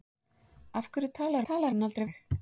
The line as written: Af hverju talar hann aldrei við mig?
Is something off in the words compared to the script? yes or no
yes